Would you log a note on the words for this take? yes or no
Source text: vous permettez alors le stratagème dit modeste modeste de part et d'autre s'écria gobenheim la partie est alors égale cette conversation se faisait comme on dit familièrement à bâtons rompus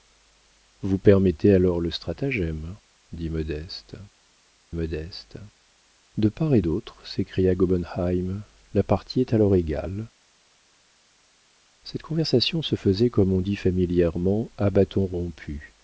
no